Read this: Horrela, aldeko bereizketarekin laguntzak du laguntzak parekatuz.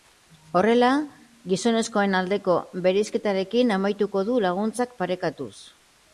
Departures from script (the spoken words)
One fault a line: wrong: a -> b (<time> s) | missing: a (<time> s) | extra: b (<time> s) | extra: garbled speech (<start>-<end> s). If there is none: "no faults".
extra: gizonezkoen (1.5 s)
wrong: laguntzak -> amaituko (3.8 s)